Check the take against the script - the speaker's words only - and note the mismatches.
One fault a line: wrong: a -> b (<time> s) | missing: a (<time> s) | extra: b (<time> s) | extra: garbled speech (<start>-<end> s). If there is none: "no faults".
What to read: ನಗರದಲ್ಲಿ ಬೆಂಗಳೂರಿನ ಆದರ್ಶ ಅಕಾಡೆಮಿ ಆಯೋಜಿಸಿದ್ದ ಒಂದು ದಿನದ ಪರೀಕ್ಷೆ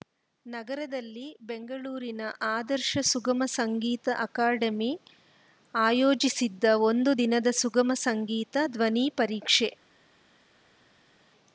extra: ಸುಗಮ ಸಂಗೀತ (3.0 s)
extra: ಸುಗಮ ಸಂಗೀತ ಧ್ವನಿ (7.6 s)